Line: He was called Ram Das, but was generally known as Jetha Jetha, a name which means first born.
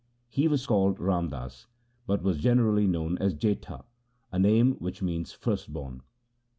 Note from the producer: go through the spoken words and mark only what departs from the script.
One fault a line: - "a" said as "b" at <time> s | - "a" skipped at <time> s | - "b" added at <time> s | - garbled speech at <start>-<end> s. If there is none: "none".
- "Jetha" skipped at 3.9 s